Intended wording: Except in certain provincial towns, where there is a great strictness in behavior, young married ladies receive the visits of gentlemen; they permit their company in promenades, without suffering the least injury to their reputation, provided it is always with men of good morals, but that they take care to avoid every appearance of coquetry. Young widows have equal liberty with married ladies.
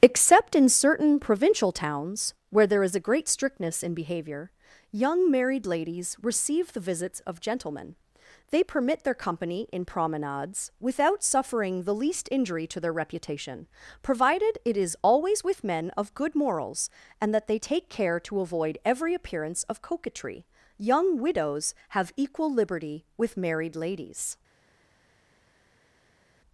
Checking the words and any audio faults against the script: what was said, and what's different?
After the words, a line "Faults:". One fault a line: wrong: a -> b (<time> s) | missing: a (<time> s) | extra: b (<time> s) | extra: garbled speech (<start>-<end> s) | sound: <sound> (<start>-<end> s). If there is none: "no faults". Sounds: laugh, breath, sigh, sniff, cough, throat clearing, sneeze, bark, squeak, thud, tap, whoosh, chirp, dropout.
Except in certain provincial towns, where there is a great strictness in behavior, young married ladies receive the visits of gentlemen; they permit their company in promenades, without suffering the least injury to their reputation, provided it is always with men of good morals, and that they take care to avoid every appearance of coquetry. Young widows have equal liberty with married ladies.
Faults:
wrong: but -> and (17.2 s)